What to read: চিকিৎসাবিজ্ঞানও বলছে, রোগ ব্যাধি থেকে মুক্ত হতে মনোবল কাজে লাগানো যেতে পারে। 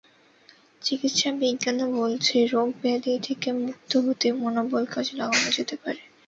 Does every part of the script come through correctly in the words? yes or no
yes